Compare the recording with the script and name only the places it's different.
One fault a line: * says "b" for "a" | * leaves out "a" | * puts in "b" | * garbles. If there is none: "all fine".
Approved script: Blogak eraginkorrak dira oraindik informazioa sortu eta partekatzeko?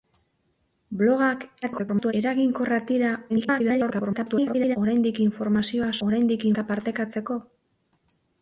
* garbles
* garbles
* says "oraindik" for "sortu"